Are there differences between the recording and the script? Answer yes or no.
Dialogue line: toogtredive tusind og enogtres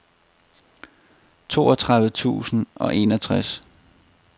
no